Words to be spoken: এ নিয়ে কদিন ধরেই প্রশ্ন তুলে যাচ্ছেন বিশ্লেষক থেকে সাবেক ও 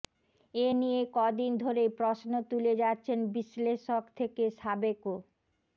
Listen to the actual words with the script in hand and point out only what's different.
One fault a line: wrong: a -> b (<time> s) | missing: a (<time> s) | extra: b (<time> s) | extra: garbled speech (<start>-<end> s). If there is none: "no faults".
no faults